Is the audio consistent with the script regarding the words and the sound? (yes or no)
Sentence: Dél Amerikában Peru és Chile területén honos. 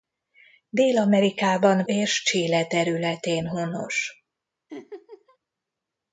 no